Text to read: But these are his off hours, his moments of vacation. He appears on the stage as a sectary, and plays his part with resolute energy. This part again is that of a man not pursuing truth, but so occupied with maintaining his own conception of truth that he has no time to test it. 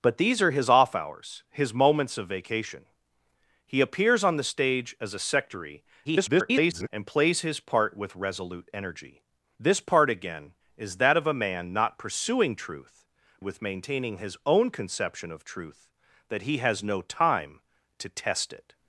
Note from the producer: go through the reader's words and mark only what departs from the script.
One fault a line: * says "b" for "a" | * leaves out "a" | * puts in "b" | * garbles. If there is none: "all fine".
* garbles
* leaves out "but so occupied"